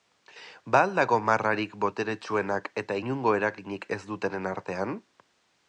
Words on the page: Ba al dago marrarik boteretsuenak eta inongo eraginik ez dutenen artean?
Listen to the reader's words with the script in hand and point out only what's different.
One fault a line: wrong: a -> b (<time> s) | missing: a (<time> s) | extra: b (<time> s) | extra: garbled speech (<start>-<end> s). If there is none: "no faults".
no faults